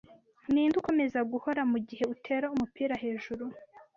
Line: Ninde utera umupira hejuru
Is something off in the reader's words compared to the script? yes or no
yes